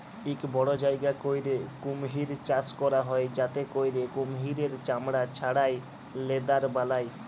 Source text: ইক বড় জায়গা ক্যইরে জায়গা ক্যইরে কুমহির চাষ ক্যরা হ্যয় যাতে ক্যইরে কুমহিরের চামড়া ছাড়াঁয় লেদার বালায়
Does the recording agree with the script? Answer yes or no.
no